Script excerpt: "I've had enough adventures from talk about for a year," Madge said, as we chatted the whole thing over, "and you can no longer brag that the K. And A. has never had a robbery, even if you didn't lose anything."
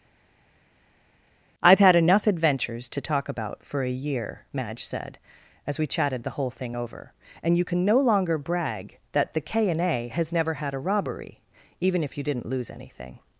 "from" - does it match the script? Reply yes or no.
no